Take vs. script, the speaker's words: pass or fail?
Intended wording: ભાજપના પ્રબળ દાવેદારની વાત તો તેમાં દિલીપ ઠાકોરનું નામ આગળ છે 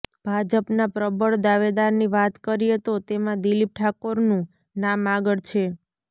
fail